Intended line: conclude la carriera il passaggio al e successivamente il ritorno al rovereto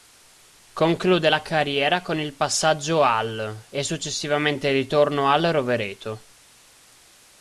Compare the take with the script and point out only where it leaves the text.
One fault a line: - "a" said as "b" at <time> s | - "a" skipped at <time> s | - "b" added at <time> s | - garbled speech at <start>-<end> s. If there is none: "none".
- "con" added at 2.0 s